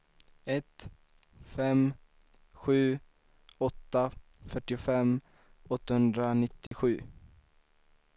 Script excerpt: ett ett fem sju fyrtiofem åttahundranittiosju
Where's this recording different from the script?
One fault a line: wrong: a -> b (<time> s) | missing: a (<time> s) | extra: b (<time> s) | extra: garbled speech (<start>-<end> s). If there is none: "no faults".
missing: ett (0.9 s)
extra: åtta (3.6 s)